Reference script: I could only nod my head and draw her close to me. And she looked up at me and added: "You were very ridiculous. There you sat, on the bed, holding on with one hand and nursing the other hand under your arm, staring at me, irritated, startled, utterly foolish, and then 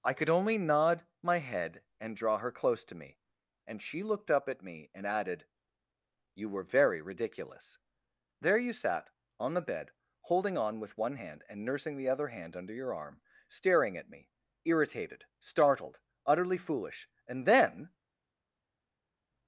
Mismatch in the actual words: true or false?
false